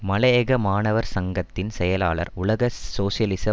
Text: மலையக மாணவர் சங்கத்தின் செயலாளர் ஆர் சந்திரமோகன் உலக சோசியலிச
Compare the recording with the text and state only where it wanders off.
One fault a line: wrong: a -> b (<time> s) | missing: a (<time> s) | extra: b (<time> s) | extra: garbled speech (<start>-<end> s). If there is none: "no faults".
missing: ஆர் சந்திரமோகன் (2.3 s)